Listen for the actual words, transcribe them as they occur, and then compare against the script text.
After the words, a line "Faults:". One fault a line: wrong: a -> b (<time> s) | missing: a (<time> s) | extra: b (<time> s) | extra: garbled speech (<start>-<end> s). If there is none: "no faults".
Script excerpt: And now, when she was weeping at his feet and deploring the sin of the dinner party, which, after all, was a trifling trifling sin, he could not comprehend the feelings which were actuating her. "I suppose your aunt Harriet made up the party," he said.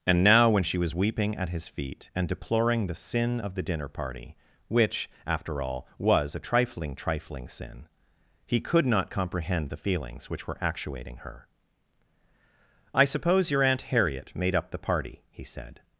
And now, when she was weeping at his feet and deploring the sin of the dinner party, which, after all, was a trifling trifling sin, he could not comprehend the feelings which were actuating her. "I suppose your aunt Harriet made up the party," he said.
Faults:
no faults